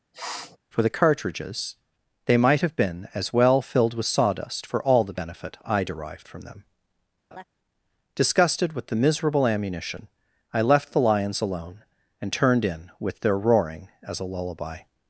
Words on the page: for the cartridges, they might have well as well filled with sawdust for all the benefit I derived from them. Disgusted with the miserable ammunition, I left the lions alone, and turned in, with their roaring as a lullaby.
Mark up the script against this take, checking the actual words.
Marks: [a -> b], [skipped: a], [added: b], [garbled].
for the cartridges, they might have [well -> been] as well filled with sawdust for all the benefit I derived from them. Disgusted with the miserable ammunition, I left the lions alone, and turned in, with their roaring as a lullaby.